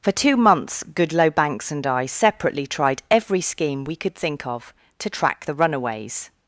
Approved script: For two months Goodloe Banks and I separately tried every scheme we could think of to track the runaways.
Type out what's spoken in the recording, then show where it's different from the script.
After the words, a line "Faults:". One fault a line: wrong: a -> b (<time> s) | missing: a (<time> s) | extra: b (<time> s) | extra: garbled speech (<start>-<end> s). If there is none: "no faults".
For two months Goodloe Banks and I separately tried every scheme we could think of to track the runaways.
Faults:
no faults